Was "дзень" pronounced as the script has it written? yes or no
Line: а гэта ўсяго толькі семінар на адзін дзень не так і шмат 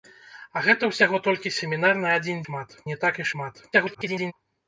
no